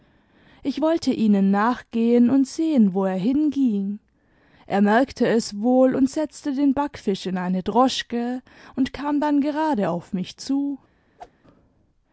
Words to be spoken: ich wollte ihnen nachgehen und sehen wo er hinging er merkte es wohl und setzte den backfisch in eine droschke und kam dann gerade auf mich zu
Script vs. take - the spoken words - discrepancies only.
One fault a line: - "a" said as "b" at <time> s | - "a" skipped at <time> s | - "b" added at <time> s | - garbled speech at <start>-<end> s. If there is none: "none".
none